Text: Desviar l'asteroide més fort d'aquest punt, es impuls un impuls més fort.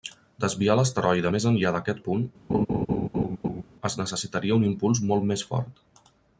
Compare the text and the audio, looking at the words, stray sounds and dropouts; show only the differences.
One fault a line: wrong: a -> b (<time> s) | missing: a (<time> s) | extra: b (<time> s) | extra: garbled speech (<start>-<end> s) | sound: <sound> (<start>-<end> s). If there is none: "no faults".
wrong: fort -> enllà (1.5 s)
sound: laugh (2.5-3.6 s)
wrong: impuls -> necessitaria (4.0 s)
extra: molt (5.1 s)